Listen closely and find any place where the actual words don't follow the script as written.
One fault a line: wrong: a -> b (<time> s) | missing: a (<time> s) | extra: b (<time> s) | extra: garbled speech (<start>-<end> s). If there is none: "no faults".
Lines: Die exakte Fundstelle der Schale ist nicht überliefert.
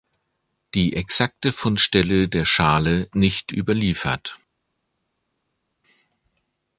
missing: ist (3.1 s)